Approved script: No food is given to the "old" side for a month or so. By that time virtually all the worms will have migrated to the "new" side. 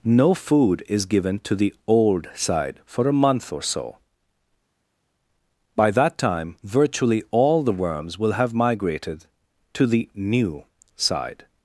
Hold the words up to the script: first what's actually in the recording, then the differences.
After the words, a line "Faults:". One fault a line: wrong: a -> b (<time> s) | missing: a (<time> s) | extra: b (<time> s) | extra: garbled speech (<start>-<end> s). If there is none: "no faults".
No food is given to the "old" side for a month or so. By that time virtually all the worms will have migrated to the "new" side.
Faults:
no faults